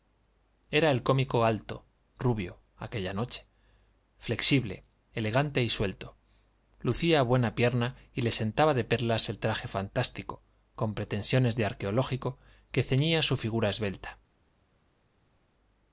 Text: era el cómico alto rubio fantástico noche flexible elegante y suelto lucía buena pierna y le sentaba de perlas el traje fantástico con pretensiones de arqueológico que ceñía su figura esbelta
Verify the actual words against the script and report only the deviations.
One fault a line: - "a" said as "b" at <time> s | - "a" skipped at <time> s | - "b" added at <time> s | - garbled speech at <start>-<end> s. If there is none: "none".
- "fantástico" said as "aquella" at 2.8 s